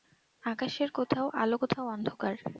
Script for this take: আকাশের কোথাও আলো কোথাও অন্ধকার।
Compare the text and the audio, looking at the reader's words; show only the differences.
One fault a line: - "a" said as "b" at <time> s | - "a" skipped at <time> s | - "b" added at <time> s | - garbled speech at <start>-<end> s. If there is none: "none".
none